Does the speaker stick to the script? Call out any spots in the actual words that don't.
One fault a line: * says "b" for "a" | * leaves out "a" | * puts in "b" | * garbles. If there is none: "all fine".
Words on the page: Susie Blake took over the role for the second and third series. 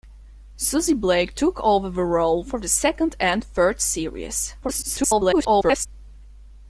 * garbles